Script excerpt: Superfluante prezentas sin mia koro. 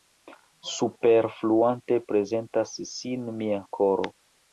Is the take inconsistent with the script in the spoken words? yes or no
no